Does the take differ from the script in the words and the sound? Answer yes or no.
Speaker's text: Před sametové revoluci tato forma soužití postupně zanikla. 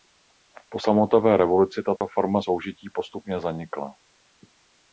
yes